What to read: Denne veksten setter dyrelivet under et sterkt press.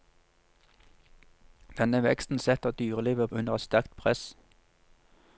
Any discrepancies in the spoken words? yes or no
no